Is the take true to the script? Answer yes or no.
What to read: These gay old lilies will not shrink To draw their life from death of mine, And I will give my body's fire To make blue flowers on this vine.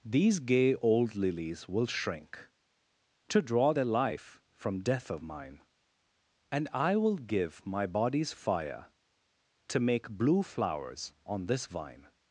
no